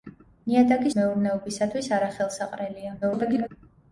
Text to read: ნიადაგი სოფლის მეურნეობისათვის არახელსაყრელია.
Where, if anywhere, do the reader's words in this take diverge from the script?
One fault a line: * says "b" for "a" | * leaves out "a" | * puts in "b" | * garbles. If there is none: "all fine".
* leaves out "სოფლის"
* garbles